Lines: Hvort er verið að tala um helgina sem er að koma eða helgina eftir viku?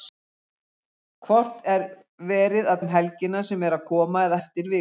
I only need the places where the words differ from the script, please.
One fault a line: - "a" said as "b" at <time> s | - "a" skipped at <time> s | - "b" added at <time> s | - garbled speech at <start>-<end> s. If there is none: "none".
- "tala" skipped at 2.8 s
- "helgina" skipped at 4.4 s